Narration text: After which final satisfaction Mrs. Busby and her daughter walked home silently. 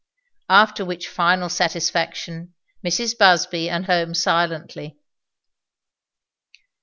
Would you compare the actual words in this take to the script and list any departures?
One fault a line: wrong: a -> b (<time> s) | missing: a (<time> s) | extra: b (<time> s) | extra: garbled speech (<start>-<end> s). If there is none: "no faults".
missing: her daughter walked (3.9 s)